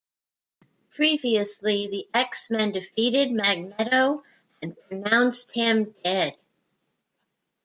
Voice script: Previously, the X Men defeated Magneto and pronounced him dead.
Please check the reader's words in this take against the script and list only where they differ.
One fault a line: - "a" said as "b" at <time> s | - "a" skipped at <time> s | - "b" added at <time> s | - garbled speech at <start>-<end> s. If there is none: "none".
none